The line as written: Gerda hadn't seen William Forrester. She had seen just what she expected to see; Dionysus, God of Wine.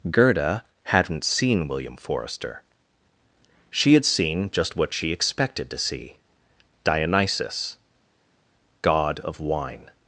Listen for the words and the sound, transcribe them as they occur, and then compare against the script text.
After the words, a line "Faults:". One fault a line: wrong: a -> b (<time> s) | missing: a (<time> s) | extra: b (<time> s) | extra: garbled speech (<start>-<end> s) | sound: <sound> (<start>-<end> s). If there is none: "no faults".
Gerda hadn't seen William Forrester. She had seen just what she expected to see; Dionysus, God of Wine.
Faults:
no faults